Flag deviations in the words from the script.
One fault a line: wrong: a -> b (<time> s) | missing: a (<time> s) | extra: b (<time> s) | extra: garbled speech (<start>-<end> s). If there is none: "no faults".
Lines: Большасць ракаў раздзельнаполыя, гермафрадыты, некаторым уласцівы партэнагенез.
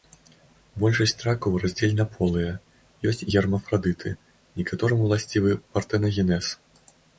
extra: ёсць (3.1 s)